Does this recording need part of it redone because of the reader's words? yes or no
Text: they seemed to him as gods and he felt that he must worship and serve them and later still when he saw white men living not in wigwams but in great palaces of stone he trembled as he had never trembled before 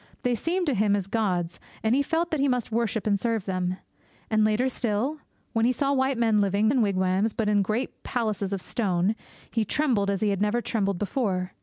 yes